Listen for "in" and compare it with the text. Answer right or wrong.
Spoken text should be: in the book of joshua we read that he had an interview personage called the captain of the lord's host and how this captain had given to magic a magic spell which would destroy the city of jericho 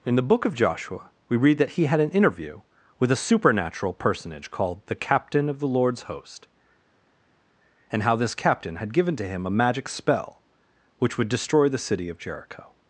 right